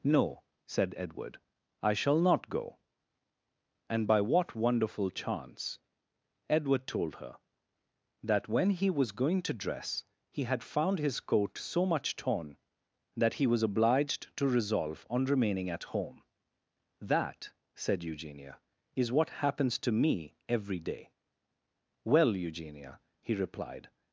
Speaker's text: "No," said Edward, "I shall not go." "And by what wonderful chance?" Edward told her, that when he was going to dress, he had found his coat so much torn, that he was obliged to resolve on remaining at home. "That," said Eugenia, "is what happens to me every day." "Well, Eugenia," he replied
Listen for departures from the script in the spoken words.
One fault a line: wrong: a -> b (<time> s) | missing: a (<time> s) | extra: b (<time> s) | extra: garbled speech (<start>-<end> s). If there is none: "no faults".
no faults